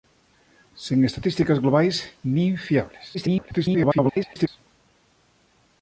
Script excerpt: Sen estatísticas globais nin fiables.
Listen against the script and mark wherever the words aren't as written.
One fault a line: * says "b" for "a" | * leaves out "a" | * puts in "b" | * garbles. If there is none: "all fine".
* garbles